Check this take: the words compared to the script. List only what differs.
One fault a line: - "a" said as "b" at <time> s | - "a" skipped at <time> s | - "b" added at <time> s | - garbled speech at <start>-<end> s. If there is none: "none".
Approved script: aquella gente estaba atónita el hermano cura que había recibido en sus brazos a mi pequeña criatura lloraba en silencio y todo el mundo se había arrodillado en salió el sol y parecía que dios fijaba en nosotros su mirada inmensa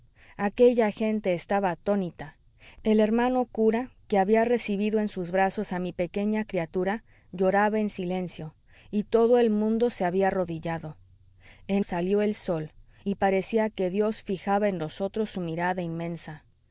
none